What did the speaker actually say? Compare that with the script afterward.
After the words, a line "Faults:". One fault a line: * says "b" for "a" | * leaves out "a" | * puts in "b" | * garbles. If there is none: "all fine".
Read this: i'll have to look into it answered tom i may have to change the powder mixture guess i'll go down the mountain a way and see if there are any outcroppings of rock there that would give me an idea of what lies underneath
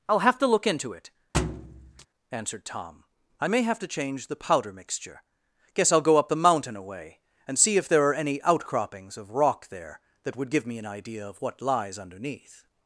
i'll have to look into it answered tom i may have to change the powder mixture guess i'll go up the mountain a way and see if there are any outcroppings of rock there that would give me an idea of what lies underneath
Faults:
* says "up" for "down"